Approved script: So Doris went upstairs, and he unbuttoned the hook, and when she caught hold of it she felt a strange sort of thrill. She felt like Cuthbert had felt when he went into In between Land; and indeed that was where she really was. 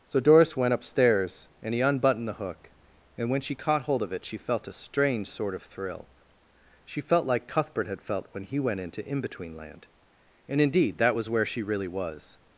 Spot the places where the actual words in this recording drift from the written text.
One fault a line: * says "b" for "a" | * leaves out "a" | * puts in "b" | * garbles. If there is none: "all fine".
all fine